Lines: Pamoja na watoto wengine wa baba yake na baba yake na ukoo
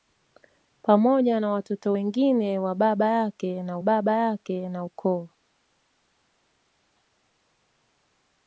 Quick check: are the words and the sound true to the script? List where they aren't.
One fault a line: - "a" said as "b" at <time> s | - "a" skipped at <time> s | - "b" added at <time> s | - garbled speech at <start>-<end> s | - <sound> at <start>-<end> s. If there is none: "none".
none